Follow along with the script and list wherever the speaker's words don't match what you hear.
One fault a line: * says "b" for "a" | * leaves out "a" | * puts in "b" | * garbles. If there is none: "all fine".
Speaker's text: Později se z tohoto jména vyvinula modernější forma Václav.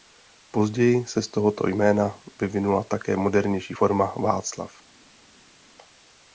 * puts in "také"